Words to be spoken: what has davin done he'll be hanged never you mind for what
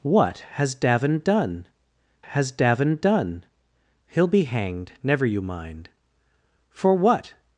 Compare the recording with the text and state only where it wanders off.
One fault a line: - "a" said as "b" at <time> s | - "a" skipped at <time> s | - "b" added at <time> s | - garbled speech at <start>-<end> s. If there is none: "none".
- "has davin done" added at 2.3 s